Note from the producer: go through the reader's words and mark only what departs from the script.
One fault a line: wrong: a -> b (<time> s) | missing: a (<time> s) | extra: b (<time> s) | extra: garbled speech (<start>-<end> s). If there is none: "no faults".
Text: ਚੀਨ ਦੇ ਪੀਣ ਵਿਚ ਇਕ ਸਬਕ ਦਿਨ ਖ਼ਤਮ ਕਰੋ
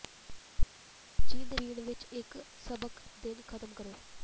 no faults